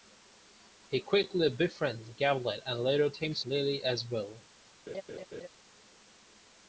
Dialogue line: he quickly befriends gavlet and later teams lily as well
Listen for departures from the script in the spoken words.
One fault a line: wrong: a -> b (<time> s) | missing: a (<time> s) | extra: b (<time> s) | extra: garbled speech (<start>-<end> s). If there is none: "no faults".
no faults